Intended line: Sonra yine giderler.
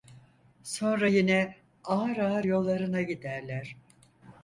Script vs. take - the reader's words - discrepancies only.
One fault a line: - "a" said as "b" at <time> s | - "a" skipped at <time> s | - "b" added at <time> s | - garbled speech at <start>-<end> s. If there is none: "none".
- "ağır ağır yollarına" added at 1.8 s